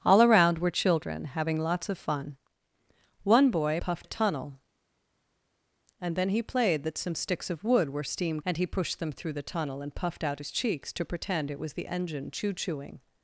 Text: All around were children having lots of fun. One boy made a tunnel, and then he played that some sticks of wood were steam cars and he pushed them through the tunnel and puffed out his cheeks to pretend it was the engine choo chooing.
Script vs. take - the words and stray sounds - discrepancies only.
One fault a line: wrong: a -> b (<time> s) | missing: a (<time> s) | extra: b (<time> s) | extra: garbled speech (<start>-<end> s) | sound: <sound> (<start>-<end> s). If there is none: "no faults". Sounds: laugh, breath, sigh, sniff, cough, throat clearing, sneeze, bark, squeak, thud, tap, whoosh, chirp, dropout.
wrong: made -> puffed (3.8 s)
missing: cars (8.4 s)